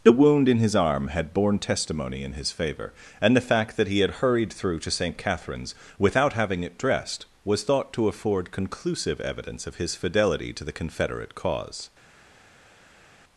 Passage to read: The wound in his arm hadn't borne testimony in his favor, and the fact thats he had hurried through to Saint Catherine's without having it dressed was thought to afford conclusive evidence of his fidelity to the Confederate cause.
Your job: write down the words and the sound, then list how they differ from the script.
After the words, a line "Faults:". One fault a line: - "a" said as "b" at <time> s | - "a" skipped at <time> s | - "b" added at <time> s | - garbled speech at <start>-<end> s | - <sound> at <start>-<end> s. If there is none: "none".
The wound in his arm had borne testimony in his favor, and the fact that he had hurried through to Saint Catherine's without having it dressed was thought to afford conclusive evidence of his fidelity to the Confederate cause.
Faults:
- "hadn't" said as "had" at 1.1 s
- "thats" said as "that" at 3.8 s